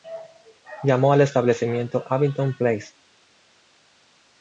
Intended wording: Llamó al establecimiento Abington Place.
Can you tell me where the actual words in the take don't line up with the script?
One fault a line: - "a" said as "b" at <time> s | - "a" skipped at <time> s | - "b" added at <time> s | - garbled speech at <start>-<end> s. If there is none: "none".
none